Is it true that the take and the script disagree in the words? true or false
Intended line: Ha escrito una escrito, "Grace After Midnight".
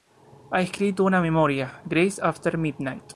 true